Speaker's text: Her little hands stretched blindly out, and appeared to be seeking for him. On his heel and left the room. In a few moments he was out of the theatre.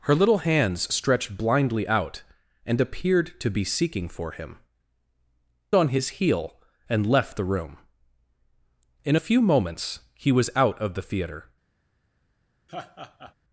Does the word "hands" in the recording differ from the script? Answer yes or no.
no